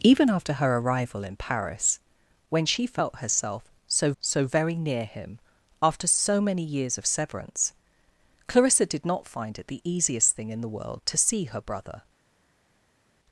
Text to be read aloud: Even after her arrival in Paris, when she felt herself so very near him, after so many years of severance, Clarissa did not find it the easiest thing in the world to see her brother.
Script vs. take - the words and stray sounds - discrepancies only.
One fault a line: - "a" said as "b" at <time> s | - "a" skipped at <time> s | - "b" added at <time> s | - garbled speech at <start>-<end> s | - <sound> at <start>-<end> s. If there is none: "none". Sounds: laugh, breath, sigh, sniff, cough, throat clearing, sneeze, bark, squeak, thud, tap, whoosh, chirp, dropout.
- "so" added at 4.2 s